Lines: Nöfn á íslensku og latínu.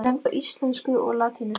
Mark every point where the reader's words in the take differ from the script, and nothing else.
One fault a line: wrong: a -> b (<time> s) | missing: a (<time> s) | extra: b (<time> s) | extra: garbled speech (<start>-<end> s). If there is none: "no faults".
no faults